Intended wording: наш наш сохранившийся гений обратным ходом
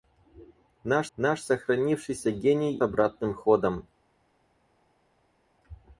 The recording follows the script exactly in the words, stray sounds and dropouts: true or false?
true